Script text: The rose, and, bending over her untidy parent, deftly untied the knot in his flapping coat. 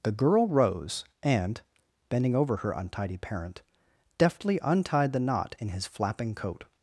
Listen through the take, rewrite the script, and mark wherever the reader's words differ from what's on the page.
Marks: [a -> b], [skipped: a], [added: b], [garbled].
The [added: girl] rose, and, bending over her untidy parent, deftly untied the knot in his flapping coat.